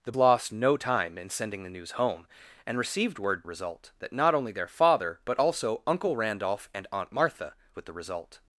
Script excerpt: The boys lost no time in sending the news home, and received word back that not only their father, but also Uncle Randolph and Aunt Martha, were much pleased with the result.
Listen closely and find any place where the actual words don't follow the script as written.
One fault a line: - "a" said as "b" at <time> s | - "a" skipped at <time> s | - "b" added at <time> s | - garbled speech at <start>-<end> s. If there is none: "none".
- "boys" skipped at 0.1 s
- "back" said as "result" at 3.4 s
- "were much pleased" skipped at 7.5 s